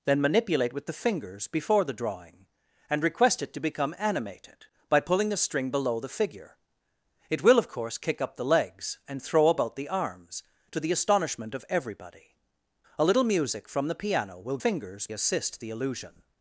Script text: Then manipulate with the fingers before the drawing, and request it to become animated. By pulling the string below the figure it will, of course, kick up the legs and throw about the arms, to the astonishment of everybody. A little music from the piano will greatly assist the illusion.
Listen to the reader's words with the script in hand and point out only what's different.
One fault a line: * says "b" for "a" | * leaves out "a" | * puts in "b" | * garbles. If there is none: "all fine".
* says "fingers" for "greatly"